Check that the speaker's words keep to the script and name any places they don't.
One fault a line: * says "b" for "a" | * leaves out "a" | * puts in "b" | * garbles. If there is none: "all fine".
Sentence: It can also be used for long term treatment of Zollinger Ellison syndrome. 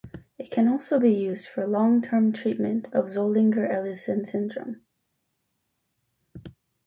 all fine